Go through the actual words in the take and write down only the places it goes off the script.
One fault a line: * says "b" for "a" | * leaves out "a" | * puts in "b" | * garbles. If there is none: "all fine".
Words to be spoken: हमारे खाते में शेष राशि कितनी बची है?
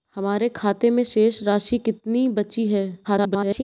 * garbles